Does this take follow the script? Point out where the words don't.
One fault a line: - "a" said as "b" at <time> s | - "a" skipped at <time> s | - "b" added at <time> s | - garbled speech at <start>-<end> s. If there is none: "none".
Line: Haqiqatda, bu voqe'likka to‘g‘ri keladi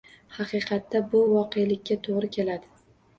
none